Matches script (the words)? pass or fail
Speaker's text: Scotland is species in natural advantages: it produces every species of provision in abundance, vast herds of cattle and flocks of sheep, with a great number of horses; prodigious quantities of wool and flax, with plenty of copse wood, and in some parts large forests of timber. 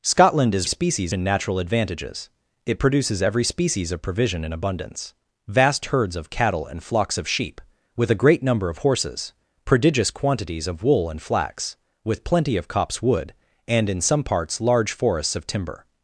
pass